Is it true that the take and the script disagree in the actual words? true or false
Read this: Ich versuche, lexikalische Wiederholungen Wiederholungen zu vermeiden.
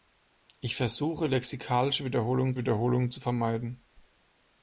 false